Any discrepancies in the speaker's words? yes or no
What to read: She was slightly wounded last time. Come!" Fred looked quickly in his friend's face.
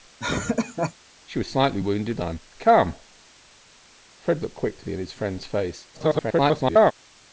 yes